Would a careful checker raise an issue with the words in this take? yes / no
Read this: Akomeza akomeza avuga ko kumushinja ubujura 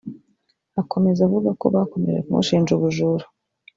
yes